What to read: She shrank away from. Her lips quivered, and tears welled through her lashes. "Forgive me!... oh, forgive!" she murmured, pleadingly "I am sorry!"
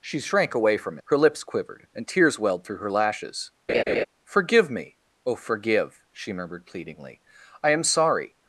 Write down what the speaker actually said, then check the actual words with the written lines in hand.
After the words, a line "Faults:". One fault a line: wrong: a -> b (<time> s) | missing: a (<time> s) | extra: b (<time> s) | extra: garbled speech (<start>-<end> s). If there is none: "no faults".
She shrank away from. Her lips quivered, and tears welled through her lashes. "Forgive me!... oh, forgive!" she murmured, pleadingly "I am sorry!"
Faults:
no faults